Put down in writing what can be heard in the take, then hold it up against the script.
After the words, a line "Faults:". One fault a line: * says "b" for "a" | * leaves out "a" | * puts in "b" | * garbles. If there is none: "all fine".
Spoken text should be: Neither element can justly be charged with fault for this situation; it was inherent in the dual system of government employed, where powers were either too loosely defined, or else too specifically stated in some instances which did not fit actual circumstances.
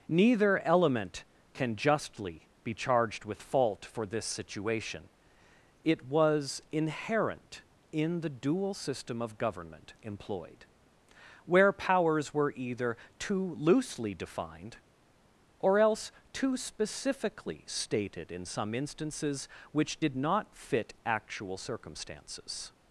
Neither element can justly be charged with fault for this situation; it was inherent in the dual system of government employed, where powers were either too loosely defined, or else too specifically stated in some instances which did not fit actual circumstances.
Faults:
all fine